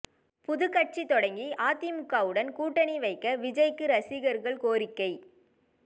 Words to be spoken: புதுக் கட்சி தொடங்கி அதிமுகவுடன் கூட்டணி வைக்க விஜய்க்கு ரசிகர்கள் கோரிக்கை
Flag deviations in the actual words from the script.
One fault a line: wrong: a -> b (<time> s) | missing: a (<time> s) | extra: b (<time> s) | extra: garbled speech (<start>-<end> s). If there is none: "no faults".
no faults